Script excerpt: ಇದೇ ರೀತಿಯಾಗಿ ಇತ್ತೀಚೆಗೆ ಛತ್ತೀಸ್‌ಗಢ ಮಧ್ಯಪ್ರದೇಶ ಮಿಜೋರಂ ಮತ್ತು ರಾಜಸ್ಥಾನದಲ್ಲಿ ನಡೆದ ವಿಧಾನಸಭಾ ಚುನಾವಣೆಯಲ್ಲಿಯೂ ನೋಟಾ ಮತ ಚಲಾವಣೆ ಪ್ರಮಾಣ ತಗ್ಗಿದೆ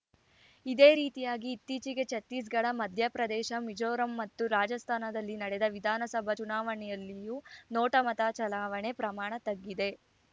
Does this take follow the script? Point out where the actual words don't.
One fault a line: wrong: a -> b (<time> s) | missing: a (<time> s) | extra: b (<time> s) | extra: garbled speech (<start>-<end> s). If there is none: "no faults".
no faults